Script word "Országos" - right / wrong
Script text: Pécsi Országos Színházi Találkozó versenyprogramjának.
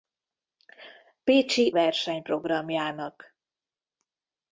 wrong